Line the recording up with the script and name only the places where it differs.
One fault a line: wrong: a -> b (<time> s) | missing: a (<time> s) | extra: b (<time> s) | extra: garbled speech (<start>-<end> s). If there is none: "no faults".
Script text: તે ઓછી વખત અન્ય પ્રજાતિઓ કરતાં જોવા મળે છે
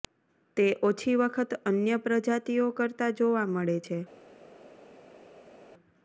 no faults